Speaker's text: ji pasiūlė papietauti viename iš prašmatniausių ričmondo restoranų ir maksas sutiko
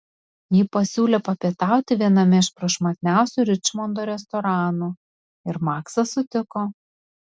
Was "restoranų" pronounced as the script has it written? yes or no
yes